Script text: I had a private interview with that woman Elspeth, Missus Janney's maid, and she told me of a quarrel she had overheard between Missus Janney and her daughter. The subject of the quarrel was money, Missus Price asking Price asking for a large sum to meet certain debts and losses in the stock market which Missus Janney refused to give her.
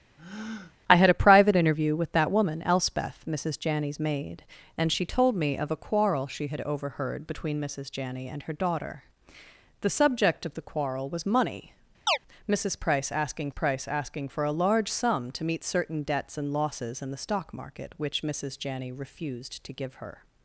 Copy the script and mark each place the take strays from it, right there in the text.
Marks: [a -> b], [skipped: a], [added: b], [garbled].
I had a private interview with that woman Elspeth, Missus Janney's maid, and she told me of a quarrel she had overheard between Missus Janney and her daughter. The subject of the quarrel was money, Missus Price asking Price asking for a large sum to meet certain debts and losses in the stock market which Missus Janney refused to give her.